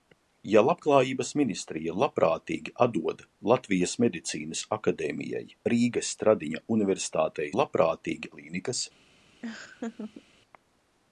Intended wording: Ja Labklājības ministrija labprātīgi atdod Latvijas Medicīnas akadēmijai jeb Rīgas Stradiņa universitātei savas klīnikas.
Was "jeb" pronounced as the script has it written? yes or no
no